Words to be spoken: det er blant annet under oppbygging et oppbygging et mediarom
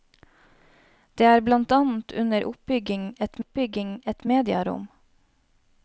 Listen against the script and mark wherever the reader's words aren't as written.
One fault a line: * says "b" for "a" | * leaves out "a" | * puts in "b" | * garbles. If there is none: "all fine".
all fine